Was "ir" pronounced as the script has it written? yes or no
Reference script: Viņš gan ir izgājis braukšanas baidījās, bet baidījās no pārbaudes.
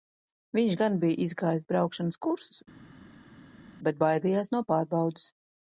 no